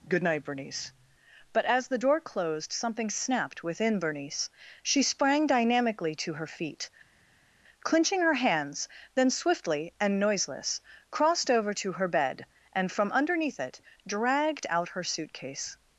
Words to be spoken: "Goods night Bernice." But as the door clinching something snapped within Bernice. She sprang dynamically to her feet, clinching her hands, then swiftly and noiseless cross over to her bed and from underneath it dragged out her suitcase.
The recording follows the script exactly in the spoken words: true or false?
false